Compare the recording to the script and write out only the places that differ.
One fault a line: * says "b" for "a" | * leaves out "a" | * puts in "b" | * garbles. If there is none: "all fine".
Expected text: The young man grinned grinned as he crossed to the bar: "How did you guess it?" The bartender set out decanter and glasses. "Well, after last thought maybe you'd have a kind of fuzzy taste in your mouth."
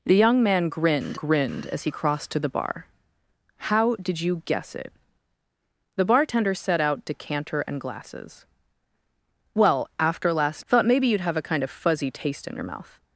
all fine